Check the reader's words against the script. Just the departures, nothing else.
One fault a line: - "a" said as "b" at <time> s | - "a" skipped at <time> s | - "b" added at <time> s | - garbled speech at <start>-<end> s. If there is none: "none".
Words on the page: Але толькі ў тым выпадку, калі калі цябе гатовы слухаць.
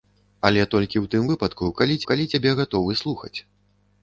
none